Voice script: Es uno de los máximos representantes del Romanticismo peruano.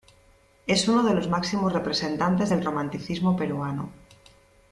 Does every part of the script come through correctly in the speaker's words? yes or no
yes